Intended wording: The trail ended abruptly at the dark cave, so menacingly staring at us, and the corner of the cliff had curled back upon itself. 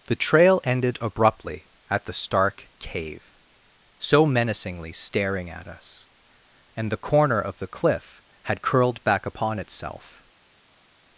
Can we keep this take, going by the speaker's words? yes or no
no